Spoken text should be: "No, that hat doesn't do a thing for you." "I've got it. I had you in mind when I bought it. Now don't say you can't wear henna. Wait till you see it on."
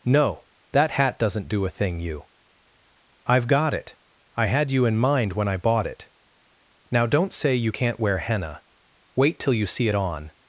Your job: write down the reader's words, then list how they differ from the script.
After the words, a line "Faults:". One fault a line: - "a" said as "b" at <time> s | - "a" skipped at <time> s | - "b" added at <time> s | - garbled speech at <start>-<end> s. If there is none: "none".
"No, that hat doesn't do a thing you." "I've got it. I had you in mind when I bought it. Now don't say you can't wear henna. Wait till you see it on."
Faults:
- "for" skipped at 2.0 s